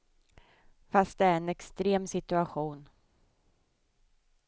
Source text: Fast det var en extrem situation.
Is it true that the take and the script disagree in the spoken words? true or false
true